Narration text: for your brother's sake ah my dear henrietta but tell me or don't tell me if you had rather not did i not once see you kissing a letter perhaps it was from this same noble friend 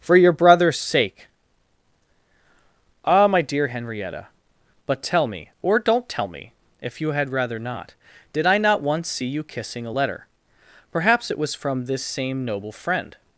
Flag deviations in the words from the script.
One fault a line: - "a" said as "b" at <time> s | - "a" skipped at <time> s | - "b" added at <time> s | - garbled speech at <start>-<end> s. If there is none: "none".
none